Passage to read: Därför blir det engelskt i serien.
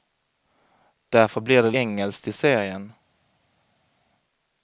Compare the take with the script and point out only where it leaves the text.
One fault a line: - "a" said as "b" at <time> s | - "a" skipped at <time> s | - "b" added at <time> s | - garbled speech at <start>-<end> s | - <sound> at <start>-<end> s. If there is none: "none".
none